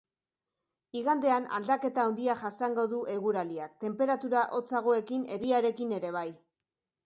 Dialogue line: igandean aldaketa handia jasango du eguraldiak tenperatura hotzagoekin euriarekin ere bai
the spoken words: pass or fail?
pass